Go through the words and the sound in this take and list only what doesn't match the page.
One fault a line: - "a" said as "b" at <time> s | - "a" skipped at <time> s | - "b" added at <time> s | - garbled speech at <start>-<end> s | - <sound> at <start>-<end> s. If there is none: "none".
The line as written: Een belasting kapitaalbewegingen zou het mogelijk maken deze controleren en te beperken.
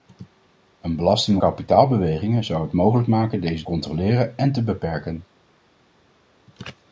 none